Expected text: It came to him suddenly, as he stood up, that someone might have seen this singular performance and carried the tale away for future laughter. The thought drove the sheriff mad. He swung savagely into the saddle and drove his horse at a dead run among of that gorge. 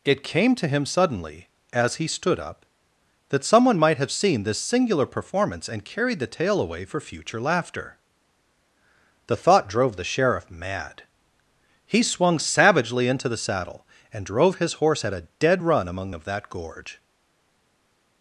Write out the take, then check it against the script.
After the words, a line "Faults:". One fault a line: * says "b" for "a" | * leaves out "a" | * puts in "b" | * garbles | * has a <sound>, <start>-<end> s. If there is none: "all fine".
It came to him suddenly, as he stood up, that someone might have seen this singular performance and carried the tale away for future laughter. The thought drove the sheriff mad. He swung savagely into the saddle and drove his horse at a dead run among of that gorge.
Faults:
all fine